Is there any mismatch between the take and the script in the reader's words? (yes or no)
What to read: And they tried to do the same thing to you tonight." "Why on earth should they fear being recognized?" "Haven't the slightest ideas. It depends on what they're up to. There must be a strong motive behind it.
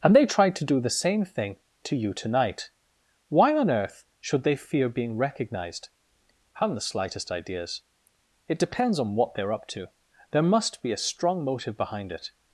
no